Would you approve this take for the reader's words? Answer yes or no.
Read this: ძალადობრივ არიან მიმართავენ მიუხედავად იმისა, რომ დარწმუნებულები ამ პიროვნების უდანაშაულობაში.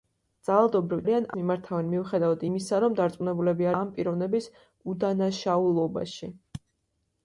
yes